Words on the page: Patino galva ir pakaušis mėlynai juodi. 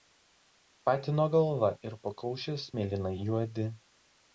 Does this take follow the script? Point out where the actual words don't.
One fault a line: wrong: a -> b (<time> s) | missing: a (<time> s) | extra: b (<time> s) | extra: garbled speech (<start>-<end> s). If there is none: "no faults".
no faults